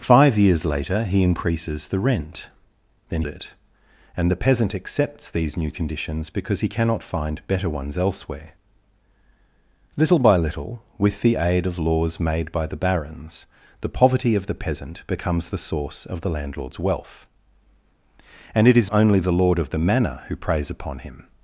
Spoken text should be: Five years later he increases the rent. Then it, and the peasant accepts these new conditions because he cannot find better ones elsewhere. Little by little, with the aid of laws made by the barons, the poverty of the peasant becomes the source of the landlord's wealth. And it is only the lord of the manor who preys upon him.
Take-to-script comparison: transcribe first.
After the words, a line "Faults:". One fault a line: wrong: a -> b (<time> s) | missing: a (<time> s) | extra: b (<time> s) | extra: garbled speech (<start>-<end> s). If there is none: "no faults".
Five years later he increases the rent. Then it, and the peasant accepts these new conditions because he cannot find better ones elsewhere. Little by little, with the aid of laws made by the barons, the poverty of the peasant becomes the source of the landlord's wealth. And it is only the lord of the manor who preys upon him.
Faults:
no faults